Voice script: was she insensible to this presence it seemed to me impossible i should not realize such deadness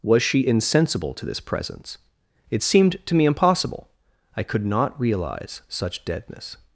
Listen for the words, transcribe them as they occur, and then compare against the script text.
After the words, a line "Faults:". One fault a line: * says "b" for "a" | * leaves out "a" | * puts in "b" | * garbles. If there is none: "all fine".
was she insensible to this presence it seemed to me impossible i could not realize such deadness
Faults:
* says "could" for "should"